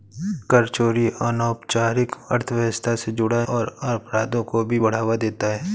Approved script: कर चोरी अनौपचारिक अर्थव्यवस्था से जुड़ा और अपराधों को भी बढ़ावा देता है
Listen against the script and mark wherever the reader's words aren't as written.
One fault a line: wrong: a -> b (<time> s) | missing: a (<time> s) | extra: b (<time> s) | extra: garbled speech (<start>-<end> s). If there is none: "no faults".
no faults